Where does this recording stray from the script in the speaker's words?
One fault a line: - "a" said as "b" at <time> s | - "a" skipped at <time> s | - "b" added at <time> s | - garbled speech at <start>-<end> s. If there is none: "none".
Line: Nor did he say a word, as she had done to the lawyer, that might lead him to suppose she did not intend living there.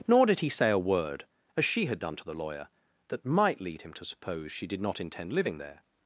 none